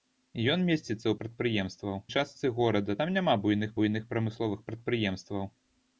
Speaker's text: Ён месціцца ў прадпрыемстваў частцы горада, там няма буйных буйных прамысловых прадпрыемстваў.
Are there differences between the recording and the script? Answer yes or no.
no